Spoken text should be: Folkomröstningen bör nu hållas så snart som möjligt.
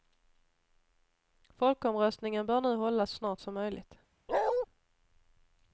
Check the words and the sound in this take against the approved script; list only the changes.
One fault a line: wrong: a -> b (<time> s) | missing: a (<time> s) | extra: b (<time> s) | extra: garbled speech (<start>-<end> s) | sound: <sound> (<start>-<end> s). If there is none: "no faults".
missing: så (3.1 s)
sound: bark (4.3-4.7 s)